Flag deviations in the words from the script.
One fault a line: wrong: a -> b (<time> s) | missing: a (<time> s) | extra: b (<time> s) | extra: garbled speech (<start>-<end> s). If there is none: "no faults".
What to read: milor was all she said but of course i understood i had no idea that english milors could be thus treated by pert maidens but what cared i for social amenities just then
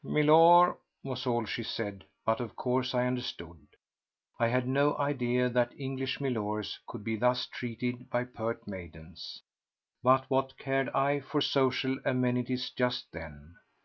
no faults